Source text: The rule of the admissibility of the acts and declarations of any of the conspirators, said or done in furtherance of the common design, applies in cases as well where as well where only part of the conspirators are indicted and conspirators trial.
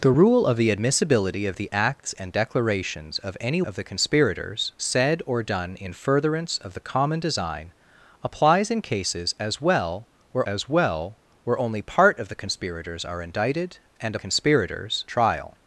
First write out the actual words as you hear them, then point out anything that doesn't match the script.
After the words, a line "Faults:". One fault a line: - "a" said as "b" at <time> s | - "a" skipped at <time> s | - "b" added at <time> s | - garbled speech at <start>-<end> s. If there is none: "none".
The rule of the admissibility of the acts and declarations of any of the conspirators, said or done in furtherance of the common design, applies in cases as well where as well where only part of the conspirators are indicted and conspirators trial.
Faults:
none